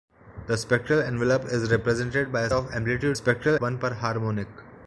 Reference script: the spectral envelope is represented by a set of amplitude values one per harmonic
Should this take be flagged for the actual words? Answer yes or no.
yes